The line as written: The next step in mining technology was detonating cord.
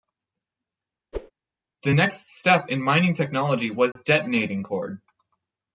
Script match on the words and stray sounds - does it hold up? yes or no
no